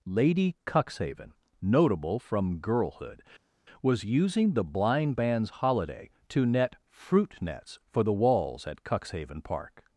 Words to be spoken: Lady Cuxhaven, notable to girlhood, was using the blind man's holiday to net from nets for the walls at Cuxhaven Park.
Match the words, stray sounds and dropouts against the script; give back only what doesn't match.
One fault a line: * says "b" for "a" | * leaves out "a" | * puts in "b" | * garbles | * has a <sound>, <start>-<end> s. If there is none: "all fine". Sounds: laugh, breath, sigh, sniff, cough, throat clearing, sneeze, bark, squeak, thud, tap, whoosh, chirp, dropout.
* says "from" for "to"
* says "fruit" for "from"